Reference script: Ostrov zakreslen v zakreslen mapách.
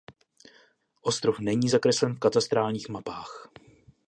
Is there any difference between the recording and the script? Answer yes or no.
yes